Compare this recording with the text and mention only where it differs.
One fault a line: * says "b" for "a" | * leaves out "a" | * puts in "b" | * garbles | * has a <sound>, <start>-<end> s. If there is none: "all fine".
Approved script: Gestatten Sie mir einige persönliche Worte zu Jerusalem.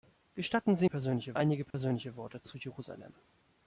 * says "persönliche" for "mir"
* has a dropout, 1.7-1.7 s